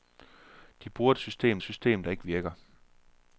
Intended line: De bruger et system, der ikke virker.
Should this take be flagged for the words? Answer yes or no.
yes